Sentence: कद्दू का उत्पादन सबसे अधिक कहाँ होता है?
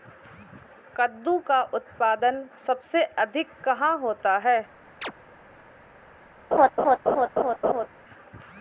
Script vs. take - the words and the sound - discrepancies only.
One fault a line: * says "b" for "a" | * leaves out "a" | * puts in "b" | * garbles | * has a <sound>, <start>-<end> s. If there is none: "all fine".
* has a chirp, 5.0-5.1 s
* has a laugh, 6.5-7.9 s